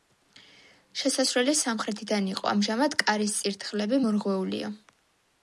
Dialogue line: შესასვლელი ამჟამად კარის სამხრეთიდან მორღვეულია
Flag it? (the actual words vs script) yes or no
yes